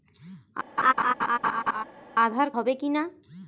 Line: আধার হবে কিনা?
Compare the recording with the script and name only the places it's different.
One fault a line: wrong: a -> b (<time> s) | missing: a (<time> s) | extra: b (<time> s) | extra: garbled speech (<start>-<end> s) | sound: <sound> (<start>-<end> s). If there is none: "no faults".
sound: laugh (0.8-1.8 s)